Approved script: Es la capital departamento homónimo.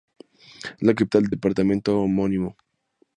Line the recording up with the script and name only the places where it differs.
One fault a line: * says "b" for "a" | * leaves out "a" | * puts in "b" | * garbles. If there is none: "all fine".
* puts in "del"